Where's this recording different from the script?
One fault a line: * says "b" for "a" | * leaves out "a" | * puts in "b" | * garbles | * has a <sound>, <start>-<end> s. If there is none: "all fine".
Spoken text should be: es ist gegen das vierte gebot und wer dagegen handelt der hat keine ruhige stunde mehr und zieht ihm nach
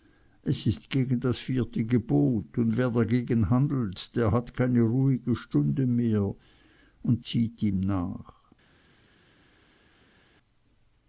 all fine